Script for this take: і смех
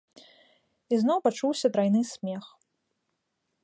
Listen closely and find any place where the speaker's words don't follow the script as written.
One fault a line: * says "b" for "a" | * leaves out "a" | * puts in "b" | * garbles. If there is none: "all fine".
* puts in "зноў пачуўся трайны"